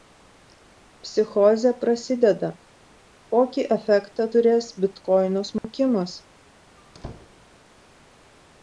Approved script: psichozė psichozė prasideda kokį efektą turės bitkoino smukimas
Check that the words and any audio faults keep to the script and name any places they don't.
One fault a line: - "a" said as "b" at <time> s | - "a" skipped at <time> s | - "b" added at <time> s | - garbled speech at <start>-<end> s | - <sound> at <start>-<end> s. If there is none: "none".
- "psichozė" skipped at 1.7 s
- dropout at 5.6-5.6 s
- squeak at 6.8-7.5 s